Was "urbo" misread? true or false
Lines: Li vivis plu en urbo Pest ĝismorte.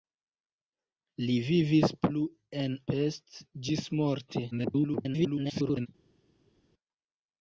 true